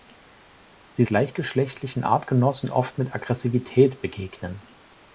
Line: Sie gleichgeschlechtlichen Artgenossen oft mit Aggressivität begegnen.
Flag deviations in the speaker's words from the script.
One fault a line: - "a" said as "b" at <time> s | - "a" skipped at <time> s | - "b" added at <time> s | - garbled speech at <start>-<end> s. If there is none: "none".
none